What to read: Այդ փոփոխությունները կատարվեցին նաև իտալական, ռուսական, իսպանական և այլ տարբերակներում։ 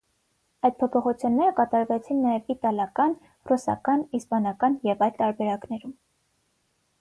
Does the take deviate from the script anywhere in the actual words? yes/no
no